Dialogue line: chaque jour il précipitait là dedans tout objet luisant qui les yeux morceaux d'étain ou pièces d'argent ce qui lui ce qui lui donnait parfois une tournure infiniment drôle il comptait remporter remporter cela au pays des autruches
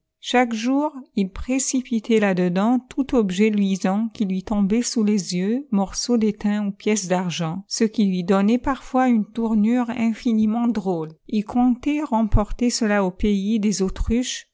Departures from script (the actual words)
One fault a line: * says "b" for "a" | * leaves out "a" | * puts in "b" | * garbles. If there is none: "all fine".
* puts in "lui tombait sous"
* leaves out "ce qui lui"
* leaves out "remporter"